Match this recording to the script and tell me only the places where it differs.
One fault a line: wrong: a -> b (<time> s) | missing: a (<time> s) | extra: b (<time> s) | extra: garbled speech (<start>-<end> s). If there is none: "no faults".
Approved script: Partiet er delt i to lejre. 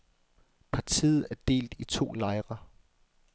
no faults